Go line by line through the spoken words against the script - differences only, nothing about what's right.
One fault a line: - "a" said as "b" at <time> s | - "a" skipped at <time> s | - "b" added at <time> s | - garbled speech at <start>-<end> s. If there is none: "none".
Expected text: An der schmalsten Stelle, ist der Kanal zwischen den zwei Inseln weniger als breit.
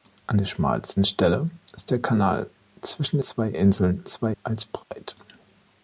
- "den" skipped at 3.2 s
- "weniger" said as "zwei" at 4.1 s